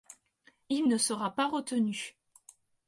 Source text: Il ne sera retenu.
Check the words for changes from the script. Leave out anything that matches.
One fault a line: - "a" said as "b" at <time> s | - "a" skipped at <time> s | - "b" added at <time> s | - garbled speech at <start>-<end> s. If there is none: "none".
- "pas" added at 1.3 s